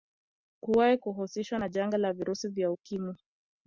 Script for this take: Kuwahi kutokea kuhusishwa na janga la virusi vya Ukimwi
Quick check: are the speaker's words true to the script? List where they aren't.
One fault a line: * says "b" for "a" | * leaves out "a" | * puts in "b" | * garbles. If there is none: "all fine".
* leaves out "kutokea"